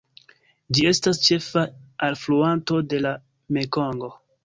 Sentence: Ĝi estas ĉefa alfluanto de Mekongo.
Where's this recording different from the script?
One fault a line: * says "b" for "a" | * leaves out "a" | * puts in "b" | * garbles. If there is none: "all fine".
* puts in "la"